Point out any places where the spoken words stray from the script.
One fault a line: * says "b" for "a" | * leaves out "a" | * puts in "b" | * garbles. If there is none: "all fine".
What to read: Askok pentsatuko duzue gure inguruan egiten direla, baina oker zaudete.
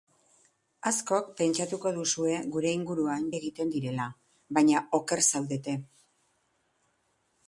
all fine